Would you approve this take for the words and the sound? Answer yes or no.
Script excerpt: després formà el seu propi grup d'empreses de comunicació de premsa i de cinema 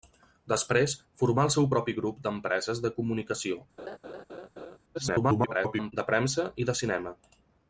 no